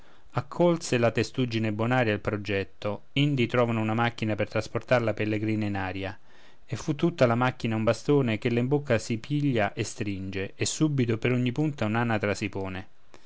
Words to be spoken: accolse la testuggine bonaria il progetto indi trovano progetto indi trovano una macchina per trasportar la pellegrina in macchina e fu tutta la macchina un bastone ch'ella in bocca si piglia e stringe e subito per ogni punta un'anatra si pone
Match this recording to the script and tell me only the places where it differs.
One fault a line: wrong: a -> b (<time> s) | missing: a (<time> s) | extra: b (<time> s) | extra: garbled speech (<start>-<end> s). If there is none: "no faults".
missing: progetto indi trovano (3.8 s)
wrong: macchina -> aria (5.8 s)